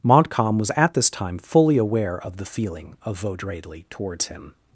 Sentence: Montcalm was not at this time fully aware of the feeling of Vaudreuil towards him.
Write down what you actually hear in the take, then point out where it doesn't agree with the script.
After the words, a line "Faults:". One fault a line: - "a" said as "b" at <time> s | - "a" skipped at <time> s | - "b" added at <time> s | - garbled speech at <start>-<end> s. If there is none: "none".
Montcalm was at this time fully aware of the feeling of Vaudreuil towards him.
Faults:
- "not" skipped at 0.7 s